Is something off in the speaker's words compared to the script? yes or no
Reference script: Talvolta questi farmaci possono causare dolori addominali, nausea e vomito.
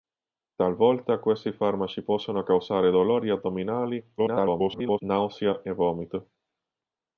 yes